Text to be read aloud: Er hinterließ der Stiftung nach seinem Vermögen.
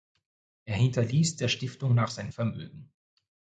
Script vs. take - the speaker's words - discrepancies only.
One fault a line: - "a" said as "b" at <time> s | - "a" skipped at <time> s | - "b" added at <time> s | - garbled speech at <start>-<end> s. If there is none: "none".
none